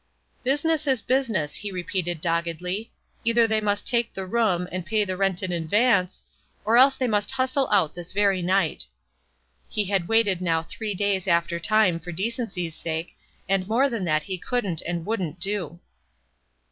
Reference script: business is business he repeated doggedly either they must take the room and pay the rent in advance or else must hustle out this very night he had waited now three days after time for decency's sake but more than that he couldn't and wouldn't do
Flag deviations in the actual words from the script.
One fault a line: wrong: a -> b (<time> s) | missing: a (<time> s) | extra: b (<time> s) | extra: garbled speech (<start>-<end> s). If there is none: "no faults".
extra: they (7.0 s)
wrong: but -> and (13.5 s)